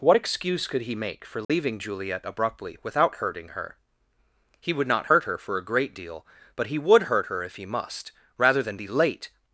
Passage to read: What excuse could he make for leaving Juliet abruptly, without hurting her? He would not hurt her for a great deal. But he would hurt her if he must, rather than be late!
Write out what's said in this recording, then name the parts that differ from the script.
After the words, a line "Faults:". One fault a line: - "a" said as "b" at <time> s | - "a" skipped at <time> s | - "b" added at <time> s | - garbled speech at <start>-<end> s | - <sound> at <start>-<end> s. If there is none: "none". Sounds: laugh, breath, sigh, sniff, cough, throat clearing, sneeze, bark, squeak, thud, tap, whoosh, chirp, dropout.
What excuse could he make for leaving Juliet abruptly, without hurting her? He would not hurt her for a great deal. But he would hurt her if he must, rather than be late!
Faults:
- dropout at 1.4-1.5 s